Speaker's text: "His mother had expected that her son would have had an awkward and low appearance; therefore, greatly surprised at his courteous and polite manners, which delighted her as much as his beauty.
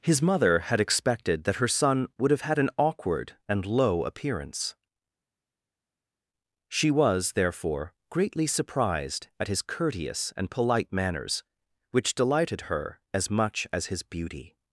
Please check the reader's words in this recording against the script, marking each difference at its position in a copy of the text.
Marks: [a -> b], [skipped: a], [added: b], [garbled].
"His mother had expected that her son would have had an awkward and low appearance; [added: she was] therefore, greatly surprised at his courteous and polite manners, which delighted her as much as his beauty.